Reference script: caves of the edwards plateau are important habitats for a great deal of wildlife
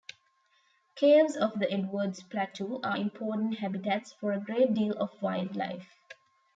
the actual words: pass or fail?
pass